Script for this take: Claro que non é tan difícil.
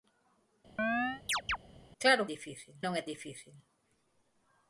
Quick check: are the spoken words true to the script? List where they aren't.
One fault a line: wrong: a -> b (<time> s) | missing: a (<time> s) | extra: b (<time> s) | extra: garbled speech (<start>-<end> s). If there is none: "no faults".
wrong: que -> difícil (2.3 s)
missing: tan (3.0 s)